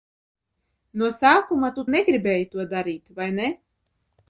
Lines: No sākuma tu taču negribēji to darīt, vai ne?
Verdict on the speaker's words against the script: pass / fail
fail